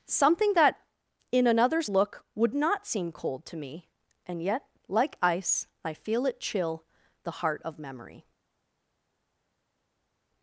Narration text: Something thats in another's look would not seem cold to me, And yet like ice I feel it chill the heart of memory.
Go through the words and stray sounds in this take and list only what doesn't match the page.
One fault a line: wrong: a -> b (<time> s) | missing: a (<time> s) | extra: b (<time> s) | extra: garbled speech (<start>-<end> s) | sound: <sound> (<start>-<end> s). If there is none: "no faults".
wrong: thats -> that (0.5 s)